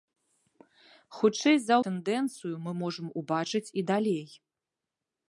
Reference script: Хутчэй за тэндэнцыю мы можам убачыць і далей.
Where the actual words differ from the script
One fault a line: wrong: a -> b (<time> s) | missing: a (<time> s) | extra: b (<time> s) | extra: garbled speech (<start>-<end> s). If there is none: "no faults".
no faults